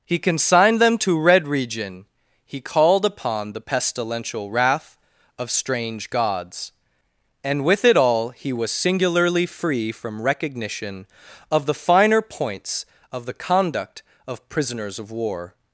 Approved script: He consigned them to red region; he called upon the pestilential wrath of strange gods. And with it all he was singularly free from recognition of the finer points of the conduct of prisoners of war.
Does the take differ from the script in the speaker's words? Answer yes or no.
no